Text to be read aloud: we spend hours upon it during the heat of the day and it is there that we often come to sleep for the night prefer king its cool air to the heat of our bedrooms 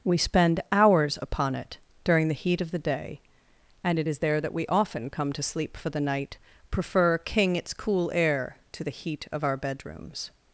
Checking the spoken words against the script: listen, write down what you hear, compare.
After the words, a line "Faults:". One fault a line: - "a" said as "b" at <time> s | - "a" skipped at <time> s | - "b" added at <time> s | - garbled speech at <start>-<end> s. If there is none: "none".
we spend hours upon it during the heat of the day and it is there that we often come to sleep for the night prefer king its cool air to the heat of our bedrooms
Faults:
none